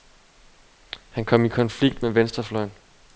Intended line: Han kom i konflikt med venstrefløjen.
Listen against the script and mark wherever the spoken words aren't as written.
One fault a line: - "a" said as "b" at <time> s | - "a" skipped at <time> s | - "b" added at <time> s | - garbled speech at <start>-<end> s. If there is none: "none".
none